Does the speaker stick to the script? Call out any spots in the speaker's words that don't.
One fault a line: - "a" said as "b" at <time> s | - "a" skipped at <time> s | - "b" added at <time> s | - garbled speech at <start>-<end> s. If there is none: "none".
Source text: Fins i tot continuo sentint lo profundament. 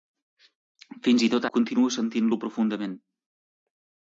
none